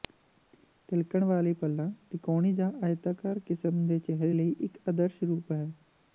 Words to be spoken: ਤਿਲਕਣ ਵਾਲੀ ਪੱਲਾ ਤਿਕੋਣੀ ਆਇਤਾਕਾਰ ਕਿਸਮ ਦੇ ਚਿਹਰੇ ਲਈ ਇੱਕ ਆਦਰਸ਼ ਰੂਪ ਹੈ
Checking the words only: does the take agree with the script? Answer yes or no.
no